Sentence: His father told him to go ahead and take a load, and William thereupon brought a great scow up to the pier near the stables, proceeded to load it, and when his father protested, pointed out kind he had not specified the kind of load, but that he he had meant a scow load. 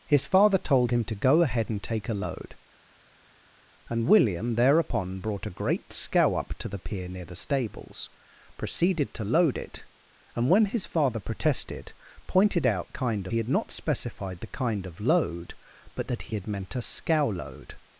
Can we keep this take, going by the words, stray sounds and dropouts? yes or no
yes